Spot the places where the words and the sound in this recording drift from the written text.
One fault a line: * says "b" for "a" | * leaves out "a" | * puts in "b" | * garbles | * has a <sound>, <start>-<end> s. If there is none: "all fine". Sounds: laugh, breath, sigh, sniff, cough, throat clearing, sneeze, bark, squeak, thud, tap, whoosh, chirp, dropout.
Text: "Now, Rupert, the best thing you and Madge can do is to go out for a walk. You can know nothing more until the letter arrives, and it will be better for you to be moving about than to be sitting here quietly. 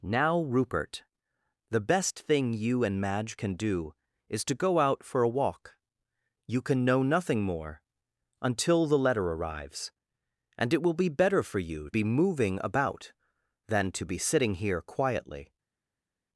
* leaves out "to"